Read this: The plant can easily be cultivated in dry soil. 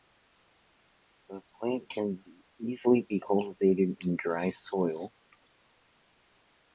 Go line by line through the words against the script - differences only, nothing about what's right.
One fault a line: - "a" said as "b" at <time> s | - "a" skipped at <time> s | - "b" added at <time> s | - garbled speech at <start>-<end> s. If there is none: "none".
none